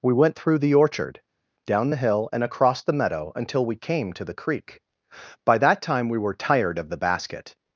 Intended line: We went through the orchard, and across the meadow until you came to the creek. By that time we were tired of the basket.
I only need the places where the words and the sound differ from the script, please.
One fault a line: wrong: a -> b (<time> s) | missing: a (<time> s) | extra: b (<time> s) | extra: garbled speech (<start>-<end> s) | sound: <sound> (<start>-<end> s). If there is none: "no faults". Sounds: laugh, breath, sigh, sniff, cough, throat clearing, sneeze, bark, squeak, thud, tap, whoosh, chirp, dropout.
extra: down the hill (1.6 s)
wrong: you -> we (3.6 s)